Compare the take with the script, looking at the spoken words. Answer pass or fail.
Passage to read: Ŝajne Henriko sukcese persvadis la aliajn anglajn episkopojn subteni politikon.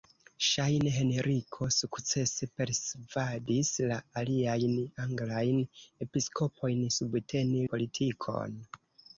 pass